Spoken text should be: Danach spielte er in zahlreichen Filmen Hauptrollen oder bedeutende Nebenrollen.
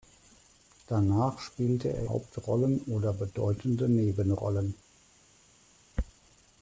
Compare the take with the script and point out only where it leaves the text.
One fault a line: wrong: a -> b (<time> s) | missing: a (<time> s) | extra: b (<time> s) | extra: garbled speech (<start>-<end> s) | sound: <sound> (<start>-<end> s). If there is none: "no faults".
missing: in zahlreichen Filmen (2.1 s)